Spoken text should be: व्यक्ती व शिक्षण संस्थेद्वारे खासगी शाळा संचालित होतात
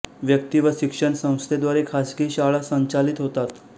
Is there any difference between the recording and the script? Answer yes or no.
no